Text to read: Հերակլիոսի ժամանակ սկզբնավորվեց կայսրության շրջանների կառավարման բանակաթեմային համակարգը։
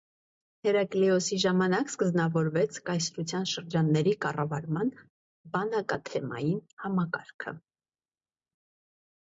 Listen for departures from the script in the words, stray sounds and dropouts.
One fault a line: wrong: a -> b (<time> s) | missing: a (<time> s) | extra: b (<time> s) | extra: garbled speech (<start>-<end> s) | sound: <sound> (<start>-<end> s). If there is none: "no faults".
no faults